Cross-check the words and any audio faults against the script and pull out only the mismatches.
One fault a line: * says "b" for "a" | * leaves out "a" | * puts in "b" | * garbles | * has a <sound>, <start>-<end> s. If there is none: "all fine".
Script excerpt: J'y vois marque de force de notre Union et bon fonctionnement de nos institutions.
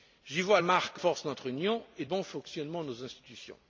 all fine